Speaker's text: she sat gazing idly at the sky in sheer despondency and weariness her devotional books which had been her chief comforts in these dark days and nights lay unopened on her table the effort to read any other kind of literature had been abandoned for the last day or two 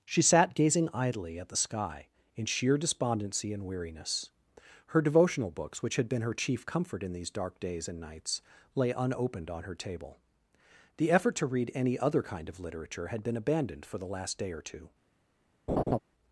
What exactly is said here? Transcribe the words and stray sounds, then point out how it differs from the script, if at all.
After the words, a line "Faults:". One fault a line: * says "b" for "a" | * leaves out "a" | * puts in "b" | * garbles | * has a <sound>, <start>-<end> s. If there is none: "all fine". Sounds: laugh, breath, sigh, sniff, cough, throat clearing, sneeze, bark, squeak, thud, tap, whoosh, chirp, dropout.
she sat gazing idly at the sky in sheer despondency and weariness her devotional books which had been her chief comfort in these dark days and nights lay unopened on her table the effort to read any other kind of literature had been abandoned for the last day or two
Faults:
* says "comfort" for "comforts"
* has a laugh, 15.7-16.0 s